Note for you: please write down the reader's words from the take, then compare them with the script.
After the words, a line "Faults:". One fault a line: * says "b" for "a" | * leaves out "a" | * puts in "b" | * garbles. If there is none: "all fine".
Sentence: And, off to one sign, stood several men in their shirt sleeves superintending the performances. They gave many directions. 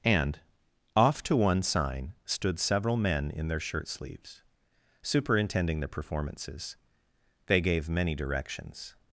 And, off to one sign, stood several men in their shirt sleeves superintending the performances. They gave many directions.
Faults:
all fine